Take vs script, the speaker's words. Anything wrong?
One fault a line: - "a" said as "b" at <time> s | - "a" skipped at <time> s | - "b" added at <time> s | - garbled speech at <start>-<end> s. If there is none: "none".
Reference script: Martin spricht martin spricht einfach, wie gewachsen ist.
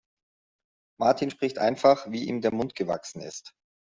- "martin spricht einfach wie" said as "einfach wie ihm der Mund" at 1.6 s